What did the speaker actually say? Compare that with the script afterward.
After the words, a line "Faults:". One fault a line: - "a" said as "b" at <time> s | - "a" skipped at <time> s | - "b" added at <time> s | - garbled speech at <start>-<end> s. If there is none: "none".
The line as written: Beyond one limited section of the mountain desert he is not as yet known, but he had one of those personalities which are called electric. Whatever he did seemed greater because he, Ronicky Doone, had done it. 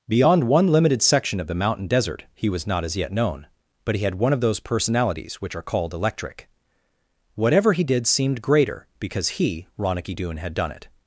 Beyond one limited section of the mountain desert he was not as yet known, but he had one of those personalities which are called electric. Whatever he did seemed greater because he, Ronicky Doone, had done it.
Faults:
- "is" said as "was" at 2.5 s